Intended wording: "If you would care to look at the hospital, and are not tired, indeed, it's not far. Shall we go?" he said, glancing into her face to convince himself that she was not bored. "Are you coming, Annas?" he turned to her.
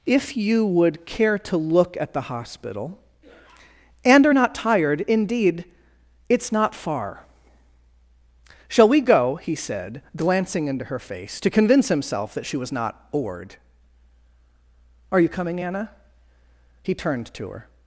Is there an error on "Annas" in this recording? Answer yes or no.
yes